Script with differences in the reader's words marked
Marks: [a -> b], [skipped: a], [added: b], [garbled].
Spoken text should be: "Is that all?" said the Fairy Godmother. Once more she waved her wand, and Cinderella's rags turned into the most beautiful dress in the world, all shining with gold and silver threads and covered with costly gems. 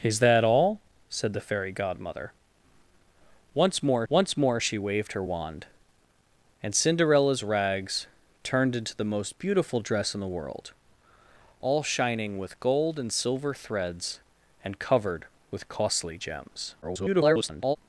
"Is that all?" said the Fairy Godmother. Once more [added: once more] she waved her wand, and Cinderella's rags turned into the most beautiful dress in the world, all shining with gold and silver threads and covered with costly gems. [garbled]